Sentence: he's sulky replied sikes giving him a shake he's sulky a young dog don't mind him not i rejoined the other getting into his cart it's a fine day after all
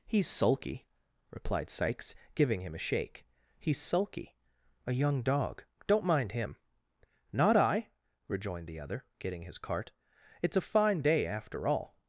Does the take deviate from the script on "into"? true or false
true